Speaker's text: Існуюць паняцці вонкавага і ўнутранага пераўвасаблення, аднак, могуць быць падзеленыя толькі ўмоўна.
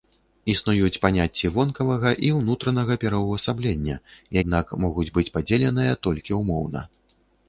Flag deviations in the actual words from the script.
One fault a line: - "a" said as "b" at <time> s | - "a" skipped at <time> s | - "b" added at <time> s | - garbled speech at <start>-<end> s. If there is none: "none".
none